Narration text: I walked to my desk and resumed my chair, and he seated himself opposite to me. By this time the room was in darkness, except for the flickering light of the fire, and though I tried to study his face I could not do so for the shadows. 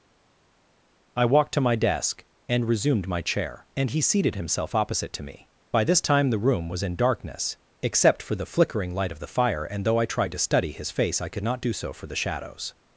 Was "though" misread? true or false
false